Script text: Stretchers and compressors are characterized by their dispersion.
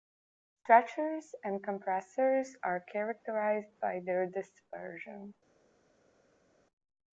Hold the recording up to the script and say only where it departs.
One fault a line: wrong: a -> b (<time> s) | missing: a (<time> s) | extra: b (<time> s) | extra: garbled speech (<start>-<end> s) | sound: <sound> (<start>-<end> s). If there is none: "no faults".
no faults